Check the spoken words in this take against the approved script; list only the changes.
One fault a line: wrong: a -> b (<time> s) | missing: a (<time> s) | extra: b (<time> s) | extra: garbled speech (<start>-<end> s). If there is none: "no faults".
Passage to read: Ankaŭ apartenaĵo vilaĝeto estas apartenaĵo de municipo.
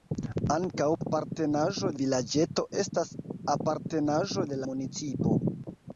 no faults